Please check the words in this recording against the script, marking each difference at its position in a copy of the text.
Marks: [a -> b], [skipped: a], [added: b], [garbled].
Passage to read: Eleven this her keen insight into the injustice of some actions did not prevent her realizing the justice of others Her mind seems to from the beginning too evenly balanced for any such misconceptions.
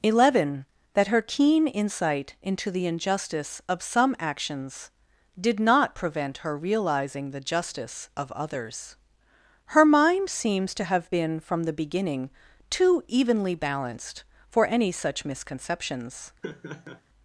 Eleven [this -> that] her keen insight into the injustice of some actions did not prevent her realizing the justice of others Her mind seems to [added: have been] from the beginning too evenly balanced for any such misconceptions.